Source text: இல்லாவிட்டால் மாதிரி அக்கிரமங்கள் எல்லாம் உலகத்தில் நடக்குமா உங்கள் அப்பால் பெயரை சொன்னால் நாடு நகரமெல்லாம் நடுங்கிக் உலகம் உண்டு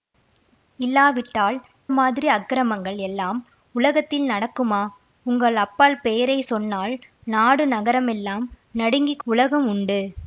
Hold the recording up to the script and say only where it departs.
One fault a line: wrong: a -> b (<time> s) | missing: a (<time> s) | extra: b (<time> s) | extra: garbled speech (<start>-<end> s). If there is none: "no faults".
no faults